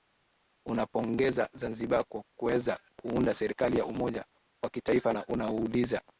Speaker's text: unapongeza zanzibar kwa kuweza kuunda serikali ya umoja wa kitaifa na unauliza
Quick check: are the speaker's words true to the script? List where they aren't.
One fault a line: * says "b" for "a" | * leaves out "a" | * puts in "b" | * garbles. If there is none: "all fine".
all fine